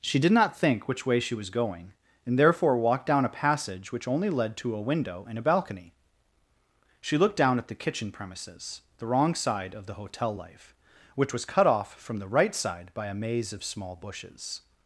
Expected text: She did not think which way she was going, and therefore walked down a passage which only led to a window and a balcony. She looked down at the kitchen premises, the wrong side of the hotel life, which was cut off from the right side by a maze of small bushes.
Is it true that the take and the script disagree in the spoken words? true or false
false